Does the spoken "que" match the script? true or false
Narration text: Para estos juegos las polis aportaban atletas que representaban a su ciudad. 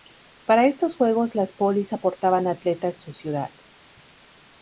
false